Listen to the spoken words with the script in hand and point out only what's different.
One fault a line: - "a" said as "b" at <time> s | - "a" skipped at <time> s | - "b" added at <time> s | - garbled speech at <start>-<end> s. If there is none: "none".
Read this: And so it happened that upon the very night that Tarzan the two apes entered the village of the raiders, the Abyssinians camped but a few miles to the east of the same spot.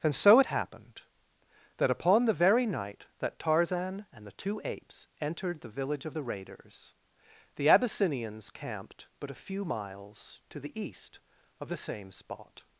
- "and" added at 4.1 s